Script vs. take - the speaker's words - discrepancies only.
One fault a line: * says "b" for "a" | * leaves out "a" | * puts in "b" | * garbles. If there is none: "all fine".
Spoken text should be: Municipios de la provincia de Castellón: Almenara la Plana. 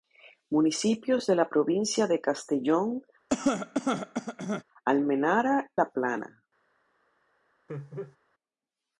all fine